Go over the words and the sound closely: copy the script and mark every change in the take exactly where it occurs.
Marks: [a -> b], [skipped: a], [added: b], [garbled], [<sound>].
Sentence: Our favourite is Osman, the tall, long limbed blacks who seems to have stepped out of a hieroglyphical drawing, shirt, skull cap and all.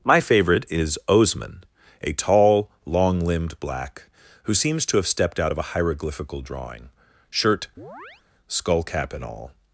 [Our -> My] favourite is Osman, [the -> a] tall, long limbed [blacks -> black] who seems to have stepped out of a hieroglyphical drawing, shirt, [chirp] skull cap and all.